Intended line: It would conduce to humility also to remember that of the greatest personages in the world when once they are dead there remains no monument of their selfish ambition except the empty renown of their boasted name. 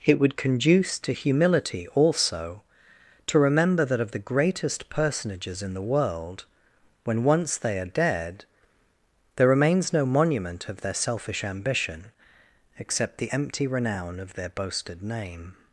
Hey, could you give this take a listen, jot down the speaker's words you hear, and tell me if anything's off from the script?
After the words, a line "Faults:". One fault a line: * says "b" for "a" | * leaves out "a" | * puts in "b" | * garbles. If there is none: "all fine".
It would conduce to humility also to remember that of the greatest personages in the world when once they are dead there remains no monument of their selfish ambition except the empty renown of their boasted name.
Faults:
all fine